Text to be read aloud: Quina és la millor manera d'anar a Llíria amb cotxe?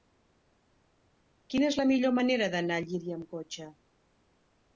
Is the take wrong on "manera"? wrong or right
right